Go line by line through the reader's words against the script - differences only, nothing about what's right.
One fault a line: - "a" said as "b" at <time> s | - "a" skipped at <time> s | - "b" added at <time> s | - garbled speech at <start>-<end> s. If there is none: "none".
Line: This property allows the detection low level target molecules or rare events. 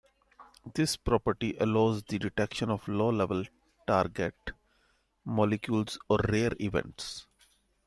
- "of" added at 2.7 s